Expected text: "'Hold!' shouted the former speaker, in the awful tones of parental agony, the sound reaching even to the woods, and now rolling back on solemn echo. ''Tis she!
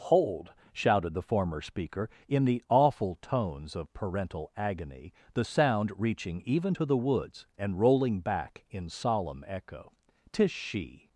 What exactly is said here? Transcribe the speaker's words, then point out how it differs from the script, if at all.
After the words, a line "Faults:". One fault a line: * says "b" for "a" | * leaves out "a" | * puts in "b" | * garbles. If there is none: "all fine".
"'Hold!' shouted the former speaker, in the awful tones of parental agony, the sound reaching even to the woods, and rolling back in solemn echo. ''Tis she!
Faults:
* leaves out "now"
* says "in" for "on"